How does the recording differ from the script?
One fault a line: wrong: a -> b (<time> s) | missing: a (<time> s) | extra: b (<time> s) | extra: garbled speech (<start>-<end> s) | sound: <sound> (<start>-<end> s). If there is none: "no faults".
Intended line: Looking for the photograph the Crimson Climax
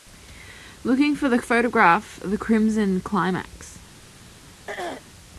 sound: throat clearing (4.7-5.0 s)